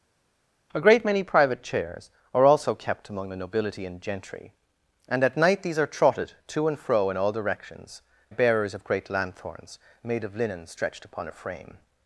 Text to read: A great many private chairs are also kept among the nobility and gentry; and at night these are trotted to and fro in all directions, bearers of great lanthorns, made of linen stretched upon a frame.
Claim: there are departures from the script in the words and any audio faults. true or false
false